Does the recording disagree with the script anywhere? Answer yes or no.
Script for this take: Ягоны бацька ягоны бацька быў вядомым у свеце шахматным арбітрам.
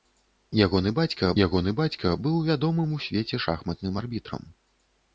no